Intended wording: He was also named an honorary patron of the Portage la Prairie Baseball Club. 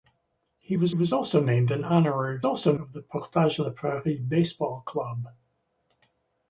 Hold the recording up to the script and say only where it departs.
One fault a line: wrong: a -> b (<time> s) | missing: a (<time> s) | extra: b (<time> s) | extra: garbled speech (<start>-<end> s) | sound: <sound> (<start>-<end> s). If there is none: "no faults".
extra: was (0.9 s)
wrong: patron -> also (2.4 s)